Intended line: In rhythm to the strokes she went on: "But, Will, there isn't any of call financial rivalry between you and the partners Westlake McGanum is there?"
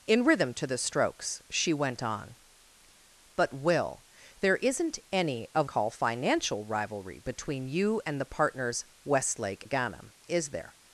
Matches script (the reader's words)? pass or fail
pass